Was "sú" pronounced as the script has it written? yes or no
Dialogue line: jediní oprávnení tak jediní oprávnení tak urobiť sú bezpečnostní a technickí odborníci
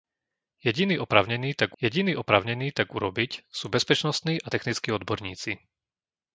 yes